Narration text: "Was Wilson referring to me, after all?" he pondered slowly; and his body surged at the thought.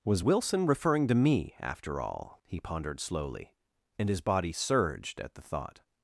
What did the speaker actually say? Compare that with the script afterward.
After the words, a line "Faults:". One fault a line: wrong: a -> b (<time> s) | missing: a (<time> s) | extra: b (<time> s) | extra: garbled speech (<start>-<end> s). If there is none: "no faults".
"Was Wilson referring to me, after all?" he pondered slowly; and his body surged at the thought.
Faults:
no faults